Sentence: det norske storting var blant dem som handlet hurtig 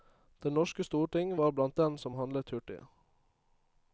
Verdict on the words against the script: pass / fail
pass